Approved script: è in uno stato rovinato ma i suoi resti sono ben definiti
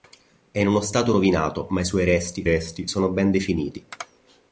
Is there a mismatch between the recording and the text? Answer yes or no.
yes